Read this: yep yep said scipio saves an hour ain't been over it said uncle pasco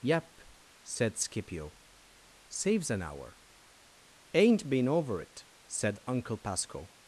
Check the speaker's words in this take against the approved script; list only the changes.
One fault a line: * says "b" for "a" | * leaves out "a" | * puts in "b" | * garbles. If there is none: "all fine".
* leaves out "yep"